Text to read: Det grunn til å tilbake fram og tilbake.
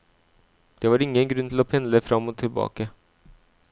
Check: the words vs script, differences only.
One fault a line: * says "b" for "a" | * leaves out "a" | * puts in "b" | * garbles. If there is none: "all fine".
* puts in "var ingen"
* says "pendle" for "tilbake"